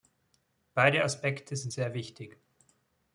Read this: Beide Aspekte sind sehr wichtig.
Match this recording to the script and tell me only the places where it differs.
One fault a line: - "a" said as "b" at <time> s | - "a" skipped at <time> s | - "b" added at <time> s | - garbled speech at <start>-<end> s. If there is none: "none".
none